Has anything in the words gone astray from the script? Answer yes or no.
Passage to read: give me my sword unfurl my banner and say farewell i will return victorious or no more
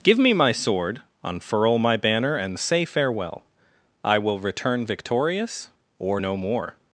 no